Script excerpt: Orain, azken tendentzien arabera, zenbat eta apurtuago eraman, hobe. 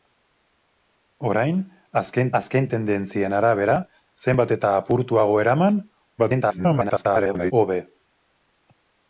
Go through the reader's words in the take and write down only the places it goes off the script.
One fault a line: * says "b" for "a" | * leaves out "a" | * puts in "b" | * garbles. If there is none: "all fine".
* puts in "azken"
* garbles